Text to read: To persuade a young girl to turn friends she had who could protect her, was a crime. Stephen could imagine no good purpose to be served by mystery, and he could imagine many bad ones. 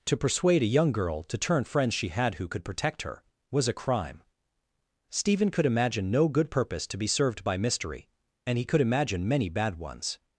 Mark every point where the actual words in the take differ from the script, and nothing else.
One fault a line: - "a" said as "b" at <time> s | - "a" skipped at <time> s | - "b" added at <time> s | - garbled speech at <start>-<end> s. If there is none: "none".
none